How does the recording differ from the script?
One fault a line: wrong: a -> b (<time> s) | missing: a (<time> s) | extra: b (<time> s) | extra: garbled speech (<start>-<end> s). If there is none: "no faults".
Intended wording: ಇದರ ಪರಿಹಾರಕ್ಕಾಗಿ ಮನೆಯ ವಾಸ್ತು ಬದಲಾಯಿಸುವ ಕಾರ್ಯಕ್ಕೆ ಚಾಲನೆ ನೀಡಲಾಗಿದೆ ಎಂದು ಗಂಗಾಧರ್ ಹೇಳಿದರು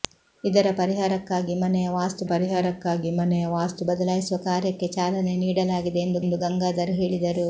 extra: ಪರಿಹಾರಕ್ಕಾಗಿ ಮನೆಯ ವಾಸ್ತು (2.3 s)
extra: ಎಂದು (6.2 s)